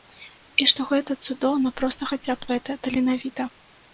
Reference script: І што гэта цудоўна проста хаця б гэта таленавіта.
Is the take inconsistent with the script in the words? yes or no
no